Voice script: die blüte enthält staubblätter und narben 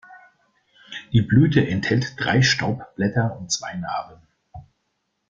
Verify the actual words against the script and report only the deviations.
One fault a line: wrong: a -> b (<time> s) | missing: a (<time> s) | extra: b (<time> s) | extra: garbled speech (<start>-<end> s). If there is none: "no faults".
extra: drei (2.2 s)
extra: zwei (3.5 s)